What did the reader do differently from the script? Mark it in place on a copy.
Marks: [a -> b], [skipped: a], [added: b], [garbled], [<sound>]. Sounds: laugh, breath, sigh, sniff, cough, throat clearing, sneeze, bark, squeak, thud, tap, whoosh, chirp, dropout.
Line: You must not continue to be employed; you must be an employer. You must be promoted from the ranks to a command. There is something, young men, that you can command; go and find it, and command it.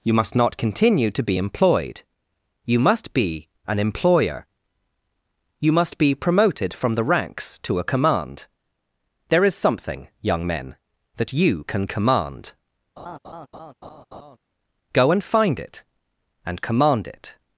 You must not continue to be employed; you must be an employer. You must be promoted from the ranks to a command. There is something, young men, that you can command; [laugh] go and find it, and command it.